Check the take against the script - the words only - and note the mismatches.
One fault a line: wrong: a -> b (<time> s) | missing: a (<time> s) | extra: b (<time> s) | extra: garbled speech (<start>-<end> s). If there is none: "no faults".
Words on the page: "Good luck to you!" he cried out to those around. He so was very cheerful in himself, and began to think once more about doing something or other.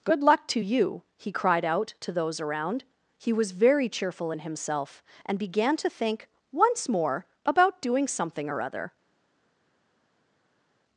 missing: so (3.3 s)